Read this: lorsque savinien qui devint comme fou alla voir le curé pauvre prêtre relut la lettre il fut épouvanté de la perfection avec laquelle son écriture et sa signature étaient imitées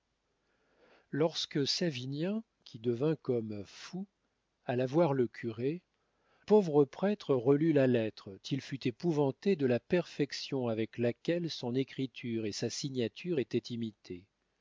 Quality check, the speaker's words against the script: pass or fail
pass